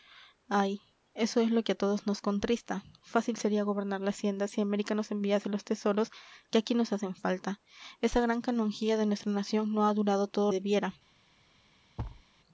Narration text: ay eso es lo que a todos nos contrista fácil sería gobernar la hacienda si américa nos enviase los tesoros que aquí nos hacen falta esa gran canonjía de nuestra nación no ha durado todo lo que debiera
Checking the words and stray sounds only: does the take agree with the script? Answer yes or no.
no